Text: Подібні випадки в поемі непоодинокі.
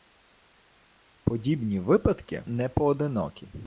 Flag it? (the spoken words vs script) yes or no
yes